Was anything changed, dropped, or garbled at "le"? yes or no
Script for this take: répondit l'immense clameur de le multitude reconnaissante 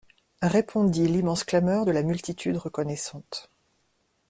yes